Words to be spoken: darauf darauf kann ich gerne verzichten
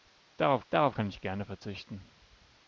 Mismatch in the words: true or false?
false